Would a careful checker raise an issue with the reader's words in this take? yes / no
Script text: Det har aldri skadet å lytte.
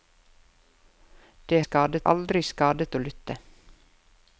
yes